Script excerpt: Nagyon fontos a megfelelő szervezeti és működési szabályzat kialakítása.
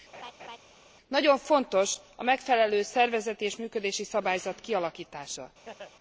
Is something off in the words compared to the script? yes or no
no